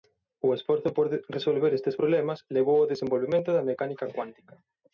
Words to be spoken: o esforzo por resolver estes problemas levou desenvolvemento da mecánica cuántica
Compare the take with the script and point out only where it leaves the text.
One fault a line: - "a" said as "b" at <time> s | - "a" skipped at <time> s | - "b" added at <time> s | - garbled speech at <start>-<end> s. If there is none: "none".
- "ao" added at 2.8 s